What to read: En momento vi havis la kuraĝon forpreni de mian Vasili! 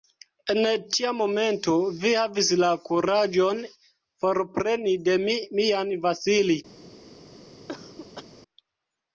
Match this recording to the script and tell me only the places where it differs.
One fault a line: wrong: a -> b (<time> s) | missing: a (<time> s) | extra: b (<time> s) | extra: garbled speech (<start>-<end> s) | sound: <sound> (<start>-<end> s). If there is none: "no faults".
extra: tia (0.9 s)
extra: mi (5.3 s)
sound: cough (7.7-8.2 s)